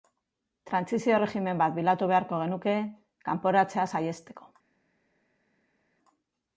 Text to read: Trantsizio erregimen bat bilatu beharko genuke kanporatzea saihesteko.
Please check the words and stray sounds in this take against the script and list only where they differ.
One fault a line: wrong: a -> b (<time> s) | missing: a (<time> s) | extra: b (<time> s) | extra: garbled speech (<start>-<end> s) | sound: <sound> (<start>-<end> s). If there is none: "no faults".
no faults